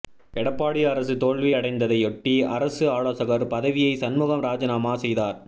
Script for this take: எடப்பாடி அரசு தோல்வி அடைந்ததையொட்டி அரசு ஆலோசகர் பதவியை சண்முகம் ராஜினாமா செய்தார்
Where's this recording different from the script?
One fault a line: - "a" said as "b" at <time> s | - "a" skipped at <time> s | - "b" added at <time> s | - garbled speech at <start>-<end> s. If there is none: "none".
none